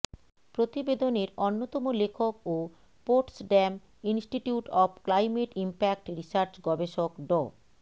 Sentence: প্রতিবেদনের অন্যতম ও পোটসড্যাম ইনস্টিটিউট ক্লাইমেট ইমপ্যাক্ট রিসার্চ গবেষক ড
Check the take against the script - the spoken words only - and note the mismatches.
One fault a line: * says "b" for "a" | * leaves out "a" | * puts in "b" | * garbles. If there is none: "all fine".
* puts in "লেখক"
* puts in "অব"